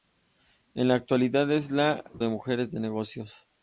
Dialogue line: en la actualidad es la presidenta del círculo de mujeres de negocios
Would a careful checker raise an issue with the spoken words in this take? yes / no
yes